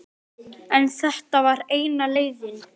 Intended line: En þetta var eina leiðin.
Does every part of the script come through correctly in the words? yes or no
yes